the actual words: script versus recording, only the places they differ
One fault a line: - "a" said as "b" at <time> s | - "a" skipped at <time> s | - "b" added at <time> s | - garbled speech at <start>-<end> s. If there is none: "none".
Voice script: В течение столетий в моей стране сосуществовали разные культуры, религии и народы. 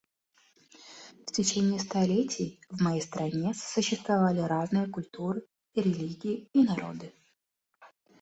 none